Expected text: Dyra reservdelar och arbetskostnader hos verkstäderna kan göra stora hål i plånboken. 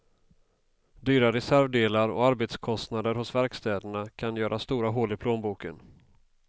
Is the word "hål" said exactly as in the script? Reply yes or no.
yes